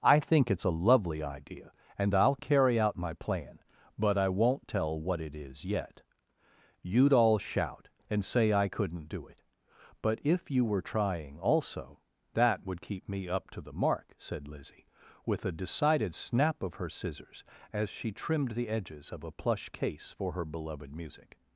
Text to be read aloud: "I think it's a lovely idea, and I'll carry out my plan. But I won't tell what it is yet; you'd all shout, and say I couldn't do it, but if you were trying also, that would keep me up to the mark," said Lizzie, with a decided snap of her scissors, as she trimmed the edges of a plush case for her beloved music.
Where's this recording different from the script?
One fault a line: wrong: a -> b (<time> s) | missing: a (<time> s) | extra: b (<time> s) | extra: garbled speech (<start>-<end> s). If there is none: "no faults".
no faults